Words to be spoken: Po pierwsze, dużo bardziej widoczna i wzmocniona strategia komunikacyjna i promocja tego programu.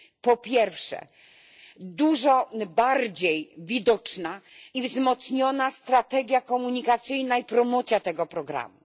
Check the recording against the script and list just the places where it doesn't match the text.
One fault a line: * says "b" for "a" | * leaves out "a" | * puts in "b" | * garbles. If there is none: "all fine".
all fine